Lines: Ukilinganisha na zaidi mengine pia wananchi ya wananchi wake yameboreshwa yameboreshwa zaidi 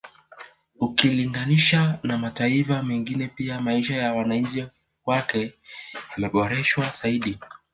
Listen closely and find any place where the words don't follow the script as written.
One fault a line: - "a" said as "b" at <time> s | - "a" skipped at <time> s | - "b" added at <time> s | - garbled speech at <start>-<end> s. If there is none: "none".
- "zaidi" said as "mataifa" at 2.2 s
- "wananchi" said as "maisha" at 3.6 s
- "yameboreshwa" skipped at 6.9 s